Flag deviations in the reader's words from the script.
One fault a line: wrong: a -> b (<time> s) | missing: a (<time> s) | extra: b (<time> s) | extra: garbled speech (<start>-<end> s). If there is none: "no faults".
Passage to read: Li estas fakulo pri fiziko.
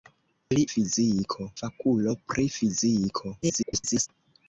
wrong: estas -> fiziko (0.7 s)
extra: garbled speech (3.4-4.1 s)